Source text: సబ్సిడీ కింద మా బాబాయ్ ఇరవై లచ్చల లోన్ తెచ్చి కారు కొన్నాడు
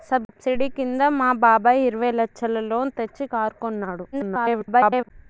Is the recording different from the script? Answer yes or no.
yes